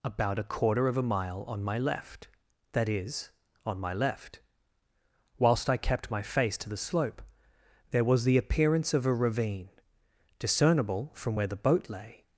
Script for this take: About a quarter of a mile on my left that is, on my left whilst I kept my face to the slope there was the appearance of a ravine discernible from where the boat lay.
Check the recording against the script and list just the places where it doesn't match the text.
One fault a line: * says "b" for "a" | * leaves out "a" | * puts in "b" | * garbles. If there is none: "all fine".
all fine